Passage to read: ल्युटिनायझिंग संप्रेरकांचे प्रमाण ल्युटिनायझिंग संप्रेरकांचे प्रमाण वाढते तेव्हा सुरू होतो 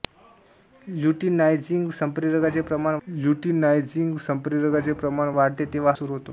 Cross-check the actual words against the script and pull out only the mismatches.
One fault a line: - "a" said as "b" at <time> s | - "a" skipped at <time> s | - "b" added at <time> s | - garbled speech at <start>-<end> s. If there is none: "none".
none